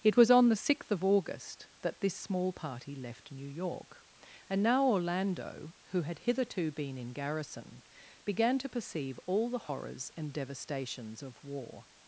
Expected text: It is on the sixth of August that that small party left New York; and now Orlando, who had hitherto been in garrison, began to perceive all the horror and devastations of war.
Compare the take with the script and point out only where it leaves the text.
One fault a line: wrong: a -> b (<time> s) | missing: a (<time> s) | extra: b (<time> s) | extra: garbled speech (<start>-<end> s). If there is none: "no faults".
wrong: is -> was (0.2 s)
wrong: that -> this (2.0 s)
wrong: horror -> horrors (9.7 s)